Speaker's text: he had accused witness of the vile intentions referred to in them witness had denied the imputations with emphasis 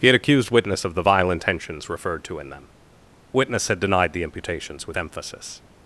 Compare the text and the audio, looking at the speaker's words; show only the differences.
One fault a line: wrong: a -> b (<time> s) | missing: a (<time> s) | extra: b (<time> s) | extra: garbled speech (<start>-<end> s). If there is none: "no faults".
no faults